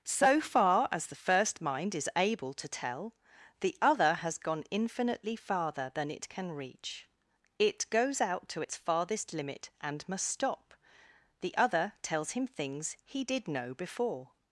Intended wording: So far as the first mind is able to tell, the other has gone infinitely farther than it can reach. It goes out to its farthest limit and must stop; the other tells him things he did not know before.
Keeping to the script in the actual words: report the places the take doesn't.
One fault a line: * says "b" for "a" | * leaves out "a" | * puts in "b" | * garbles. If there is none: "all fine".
* leaves out "not"